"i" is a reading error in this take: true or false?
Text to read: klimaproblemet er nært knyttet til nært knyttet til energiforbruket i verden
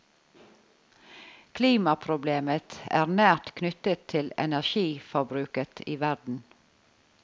false